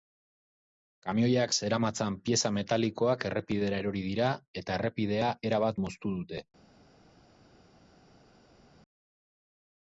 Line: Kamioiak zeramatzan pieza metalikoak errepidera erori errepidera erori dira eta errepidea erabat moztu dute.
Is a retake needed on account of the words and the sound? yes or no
yes